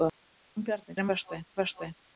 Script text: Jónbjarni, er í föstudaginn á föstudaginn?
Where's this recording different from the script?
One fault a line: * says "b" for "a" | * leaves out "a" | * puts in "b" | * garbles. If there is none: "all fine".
all fine